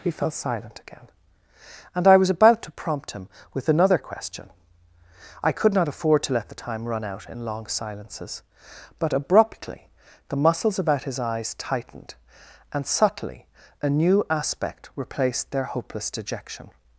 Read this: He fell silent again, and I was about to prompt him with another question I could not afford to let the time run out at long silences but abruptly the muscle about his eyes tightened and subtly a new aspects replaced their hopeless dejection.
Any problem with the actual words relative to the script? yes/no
yes